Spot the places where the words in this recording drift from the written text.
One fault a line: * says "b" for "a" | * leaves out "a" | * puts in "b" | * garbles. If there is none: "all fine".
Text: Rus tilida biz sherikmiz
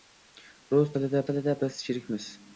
* puts in "tilida"